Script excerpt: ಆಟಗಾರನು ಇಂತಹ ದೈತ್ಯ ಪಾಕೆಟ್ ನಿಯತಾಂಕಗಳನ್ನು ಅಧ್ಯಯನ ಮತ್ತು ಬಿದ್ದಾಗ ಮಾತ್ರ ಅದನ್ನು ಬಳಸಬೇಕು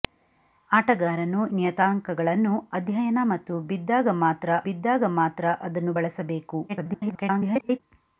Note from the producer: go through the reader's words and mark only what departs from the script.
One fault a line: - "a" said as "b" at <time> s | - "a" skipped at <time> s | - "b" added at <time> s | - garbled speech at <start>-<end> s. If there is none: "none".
- "ಇಂತಹ ದೈತ್ಯ ಪಾಕೆಟ್" skipped at 1.4 s
- "ಬಿದ್ದಾಗ ಮಾತ್ರ" added at 4.6 s
- garbled speech at 6.7-7.8 s